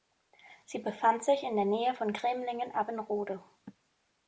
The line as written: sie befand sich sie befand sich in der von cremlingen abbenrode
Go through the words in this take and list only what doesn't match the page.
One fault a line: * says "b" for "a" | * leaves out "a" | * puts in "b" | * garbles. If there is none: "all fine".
* leaves out "sie befand sich"
* puts in "nähe"